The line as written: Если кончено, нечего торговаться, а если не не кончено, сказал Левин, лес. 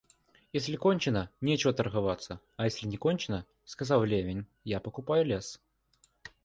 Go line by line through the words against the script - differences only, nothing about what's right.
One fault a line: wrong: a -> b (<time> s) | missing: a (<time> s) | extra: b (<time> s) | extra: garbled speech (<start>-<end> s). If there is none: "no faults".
missing: не (3.0 s)
extra: я покупаю (4.6 s)